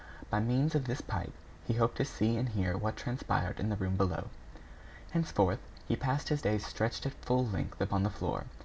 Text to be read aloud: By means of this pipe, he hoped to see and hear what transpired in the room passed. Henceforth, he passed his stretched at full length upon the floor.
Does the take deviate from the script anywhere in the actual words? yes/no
yes